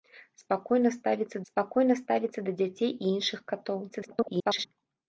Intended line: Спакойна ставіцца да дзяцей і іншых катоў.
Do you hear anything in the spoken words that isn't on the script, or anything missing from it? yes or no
yes